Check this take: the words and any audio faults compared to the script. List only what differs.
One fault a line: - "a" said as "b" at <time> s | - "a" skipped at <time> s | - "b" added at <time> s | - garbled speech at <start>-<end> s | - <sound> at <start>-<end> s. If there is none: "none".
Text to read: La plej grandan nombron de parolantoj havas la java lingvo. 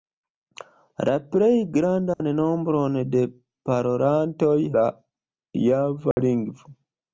- dropout at 2.1-2.2 s
- "havas" skipped at 4.6 s
- dropout at 6.1-6.2 s